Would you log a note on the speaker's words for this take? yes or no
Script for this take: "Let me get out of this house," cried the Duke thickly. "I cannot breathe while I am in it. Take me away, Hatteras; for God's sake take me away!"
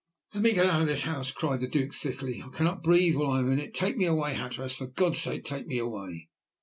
no